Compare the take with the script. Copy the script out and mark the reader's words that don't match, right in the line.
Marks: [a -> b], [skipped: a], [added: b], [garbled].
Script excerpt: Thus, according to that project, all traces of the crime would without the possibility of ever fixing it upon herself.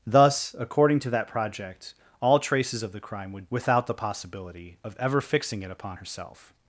Thus, according to that project, all traces of the crime would without the possibility of ever fixing it upon herself.